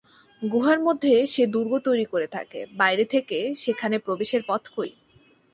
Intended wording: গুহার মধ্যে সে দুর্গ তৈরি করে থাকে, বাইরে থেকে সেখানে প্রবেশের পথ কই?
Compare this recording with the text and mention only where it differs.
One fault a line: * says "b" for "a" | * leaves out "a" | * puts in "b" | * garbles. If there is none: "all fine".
all fine